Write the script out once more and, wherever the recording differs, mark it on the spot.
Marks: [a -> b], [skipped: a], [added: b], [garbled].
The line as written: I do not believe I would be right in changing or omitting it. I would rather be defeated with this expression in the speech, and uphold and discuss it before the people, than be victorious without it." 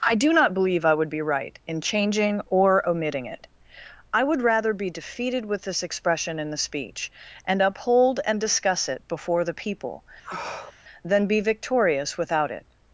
I do not believe I would be right in changing or omitting it. I would rather be defeated with this expression in the speech, and uphold and discuss it before the people, than be victorious without it."